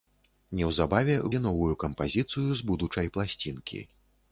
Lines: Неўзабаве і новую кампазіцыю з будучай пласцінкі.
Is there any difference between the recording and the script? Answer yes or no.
no